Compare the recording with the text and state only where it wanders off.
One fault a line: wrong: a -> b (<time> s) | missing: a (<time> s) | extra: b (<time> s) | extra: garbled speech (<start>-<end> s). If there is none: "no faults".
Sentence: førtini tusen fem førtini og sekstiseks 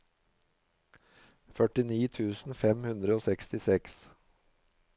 wrong: førtini -> hundre (2.9 s)